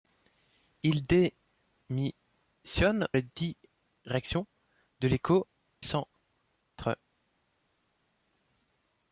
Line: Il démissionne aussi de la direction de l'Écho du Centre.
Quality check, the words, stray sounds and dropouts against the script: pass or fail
fail